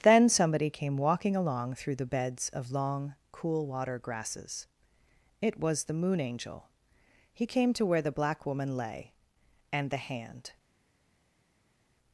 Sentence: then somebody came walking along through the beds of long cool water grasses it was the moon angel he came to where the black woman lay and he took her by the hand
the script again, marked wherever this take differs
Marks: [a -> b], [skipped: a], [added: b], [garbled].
then somebody came walking along through the beds of long cool water grasses it was the moon angel he came to where the black woman lay and [skipped: he took her by] the hand